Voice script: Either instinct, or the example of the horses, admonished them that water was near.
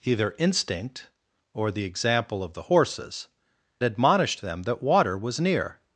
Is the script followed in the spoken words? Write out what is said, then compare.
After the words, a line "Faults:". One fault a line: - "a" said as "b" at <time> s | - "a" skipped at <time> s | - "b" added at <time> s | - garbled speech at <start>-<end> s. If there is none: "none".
Either instinct, or the example of the horses, admonished them that water was near.
Faults:
none